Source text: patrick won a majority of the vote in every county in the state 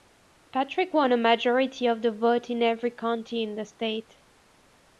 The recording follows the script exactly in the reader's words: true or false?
true